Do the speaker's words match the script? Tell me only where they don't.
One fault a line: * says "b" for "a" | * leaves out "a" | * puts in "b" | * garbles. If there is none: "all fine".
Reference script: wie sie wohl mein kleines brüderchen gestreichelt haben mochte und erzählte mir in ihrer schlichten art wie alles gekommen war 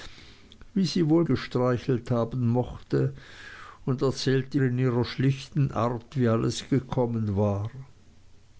* leaves out "mein kleines brüderchen"
* leaves out "mir"